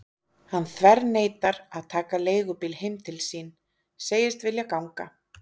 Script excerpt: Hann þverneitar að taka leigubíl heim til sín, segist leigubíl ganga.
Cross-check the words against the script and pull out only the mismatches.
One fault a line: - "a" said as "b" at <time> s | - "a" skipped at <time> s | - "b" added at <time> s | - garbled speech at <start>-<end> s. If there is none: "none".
- "leigubíl" said as "vilja" at 4.5 s